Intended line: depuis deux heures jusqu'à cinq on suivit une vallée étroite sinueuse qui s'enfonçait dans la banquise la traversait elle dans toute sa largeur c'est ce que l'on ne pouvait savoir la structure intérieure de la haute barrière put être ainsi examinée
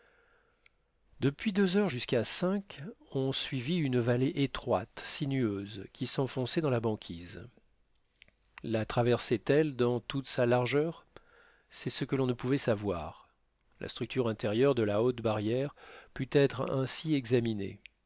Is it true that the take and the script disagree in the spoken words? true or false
false